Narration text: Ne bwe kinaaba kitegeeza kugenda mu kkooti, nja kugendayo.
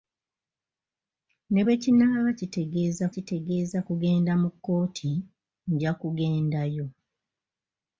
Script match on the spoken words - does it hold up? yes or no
no